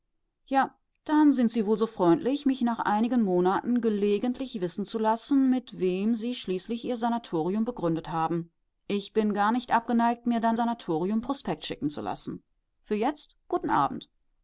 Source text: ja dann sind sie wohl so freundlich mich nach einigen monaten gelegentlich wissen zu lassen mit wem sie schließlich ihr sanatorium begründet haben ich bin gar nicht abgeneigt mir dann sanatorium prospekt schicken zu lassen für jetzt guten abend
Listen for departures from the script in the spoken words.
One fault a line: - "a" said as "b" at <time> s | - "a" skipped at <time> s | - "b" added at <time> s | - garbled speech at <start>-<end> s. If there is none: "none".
none